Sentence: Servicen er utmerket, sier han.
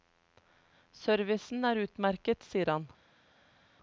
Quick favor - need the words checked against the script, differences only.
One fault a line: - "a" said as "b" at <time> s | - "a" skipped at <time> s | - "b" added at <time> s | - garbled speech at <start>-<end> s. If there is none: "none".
none